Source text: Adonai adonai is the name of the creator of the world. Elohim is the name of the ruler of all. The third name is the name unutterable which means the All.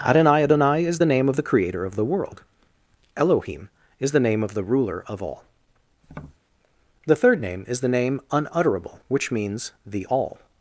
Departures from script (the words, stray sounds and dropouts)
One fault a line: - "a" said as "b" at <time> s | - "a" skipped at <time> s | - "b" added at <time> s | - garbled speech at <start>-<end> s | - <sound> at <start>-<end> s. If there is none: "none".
- tap at 6.0-6.4 s